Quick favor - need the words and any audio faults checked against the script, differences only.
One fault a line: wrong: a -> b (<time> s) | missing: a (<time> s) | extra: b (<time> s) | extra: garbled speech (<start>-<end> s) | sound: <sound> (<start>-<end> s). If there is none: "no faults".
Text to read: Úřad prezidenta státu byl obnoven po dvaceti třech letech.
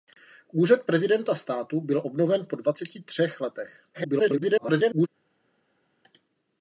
extra: garbled speech (3.9-5.1 s)